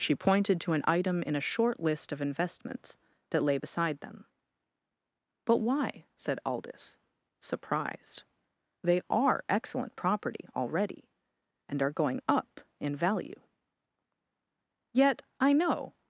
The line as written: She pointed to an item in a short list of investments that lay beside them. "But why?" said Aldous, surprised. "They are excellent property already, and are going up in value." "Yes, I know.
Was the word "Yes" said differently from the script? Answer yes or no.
yes